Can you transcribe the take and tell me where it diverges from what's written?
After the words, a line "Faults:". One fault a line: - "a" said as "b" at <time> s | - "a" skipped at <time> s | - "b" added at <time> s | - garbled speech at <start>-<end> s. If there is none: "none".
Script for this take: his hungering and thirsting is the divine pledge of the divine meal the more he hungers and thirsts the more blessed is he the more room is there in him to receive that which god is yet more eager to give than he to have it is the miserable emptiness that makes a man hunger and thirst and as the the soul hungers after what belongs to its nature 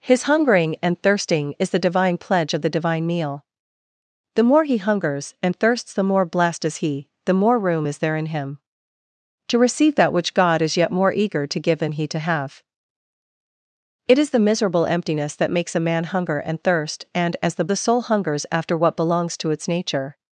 his hungering and thirsting is the divine pledge of the divine meal the more he hungers and thirsts the more blessed is he the more room is there in him to receive that which god is yet more eager to give than he to have it is the miserable emptiness that makes a man hunger and thirst and as the the soul hungers after what belongs to its nature
Faults:
none